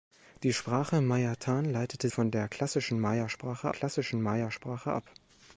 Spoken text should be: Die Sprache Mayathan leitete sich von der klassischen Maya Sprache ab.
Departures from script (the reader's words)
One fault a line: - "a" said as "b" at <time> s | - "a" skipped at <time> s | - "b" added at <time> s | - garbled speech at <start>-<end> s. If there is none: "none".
- "sich" skipped at 2.1 s
- "klassischen Maya Sprache" added at 3.7 s